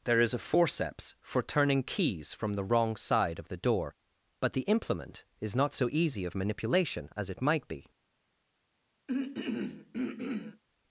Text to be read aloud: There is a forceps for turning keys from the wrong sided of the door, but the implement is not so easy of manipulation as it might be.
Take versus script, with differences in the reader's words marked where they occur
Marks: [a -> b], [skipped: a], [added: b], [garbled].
There is a forceps for turning keys from the wrong [sided -> side] of the door, but the implement is not so easy of manipulation as it might be.